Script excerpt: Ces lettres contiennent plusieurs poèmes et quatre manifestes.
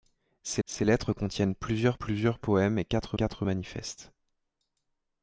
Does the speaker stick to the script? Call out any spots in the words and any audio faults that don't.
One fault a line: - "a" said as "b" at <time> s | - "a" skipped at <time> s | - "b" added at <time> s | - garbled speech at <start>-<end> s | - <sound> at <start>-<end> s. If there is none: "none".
- "ces" added at 0.6 s
- "plusieurs" added at 1.9 s
- "quatre" added at 3.1 s